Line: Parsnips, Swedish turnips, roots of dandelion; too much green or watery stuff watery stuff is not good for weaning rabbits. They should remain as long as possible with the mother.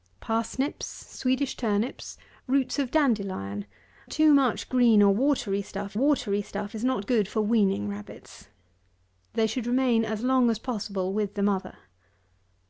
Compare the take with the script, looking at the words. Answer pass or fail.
pass